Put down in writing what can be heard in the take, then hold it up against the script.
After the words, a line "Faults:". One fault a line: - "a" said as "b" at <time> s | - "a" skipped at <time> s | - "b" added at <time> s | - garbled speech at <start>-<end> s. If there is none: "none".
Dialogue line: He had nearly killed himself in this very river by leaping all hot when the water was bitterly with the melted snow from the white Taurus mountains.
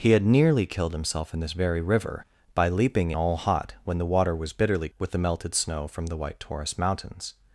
He had nearly killed himself in this very river by leaping all hot when the water was bitterly with the melted snow from the white Taurus mountains.
Faults:
none